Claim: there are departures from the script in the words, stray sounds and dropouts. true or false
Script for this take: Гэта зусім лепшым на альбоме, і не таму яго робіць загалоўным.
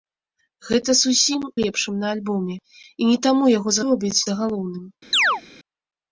true